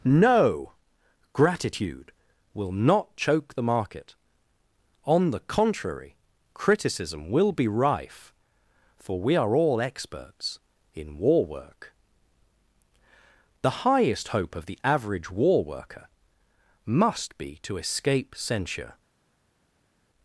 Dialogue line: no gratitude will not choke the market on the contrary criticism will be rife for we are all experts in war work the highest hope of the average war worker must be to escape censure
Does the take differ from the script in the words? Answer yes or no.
no